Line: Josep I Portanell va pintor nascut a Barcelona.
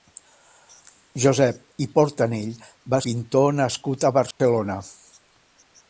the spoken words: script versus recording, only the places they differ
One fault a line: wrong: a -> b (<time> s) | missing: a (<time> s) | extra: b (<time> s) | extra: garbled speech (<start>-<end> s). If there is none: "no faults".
no faults